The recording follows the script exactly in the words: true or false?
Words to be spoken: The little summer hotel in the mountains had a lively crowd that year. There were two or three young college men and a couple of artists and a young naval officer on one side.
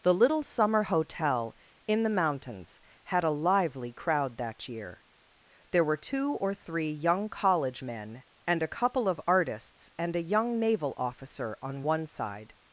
true